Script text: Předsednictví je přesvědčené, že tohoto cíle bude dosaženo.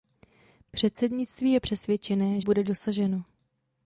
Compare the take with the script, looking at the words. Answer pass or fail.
fail